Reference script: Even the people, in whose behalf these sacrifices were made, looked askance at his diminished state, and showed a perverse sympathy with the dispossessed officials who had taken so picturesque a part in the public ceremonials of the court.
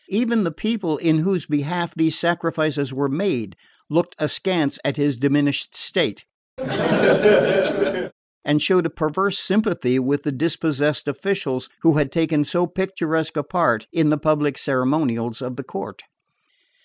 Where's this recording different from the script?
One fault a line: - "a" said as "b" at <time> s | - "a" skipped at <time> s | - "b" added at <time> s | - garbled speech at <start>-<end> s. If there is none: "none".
none